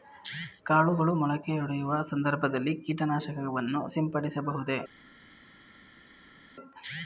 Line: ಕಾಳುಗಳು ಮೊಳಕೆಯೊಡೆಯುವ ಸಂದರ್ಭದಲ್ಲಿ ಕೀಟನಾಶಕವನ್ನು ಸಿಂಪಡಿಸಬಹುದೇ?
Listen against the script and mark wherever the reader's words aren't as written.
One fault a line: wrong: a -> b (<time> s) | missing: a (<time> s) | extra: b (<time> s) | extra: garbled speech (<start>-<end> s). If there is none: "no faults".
no faults